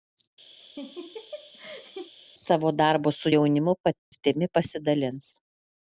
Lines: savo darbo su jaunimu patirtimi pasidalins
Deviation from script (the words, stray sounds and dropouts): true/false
true